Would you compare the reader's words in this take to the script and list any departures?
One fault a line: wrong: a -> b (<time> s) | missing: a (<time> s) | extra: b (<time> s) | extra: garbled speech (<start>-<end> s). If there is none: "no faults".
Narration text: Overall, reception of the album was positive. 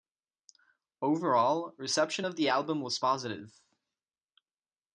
no faults